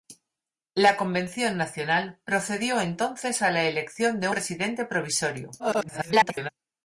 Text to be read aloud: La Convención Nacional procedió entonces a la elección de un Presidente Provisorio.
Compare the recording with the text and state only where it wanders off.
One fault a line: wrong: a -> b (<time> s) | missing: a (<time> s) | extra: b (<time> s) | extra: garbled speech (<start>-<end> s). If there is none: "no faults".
missing: un (4.3 s)
extra: garbled speech (5.6-6.5 s)